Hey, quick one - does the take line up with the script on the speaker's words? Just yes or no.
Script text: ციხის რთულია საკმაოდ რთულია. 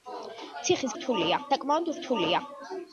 yes